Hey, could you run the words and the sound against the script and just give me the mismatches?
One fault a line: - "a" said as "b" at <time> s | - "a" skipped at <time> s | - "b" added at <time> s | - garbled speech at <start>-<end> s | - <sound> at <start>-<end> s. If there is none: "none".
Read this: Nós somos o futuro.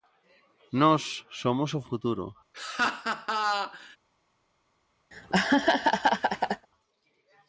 - laugh at 2.5-4.0 s
- laugh at 5.1-6.7 s